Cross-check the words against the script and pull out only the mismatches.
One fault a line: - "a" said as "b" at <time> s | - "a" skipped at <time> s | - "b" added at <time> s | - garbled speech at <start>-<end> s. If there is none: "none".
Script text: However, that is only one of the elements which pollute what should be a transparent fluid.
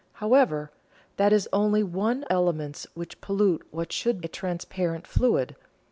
- "of the" skipped at 2.2 s
- "be" skipped at 4.2 s